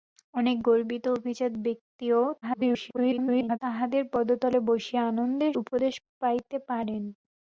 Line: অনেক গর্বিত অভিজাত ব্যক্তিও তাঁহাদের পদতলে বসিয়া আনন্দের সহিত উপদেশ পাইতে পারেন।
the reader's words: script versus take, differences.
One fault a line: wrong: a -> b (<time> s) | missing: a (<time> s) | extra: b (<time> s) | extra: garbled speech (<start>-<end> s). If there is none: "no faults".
extra: garbled speech (2.4-3.6 s)
missing: সহিত (5.5 s)